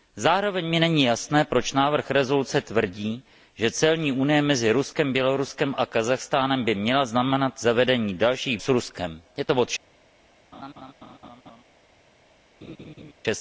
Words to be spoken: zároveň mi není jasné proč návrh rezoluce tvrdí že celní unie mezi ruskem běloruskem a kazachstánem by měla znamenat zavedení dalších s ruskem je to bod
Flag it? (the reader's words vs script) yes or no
no